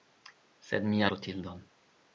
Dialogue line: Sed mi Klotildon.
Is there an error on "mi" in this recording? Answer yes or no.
no